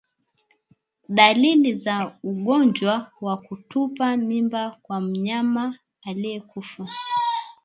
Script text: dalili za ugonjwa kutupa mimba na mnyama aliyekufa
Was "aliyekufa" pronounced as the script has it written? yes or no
yes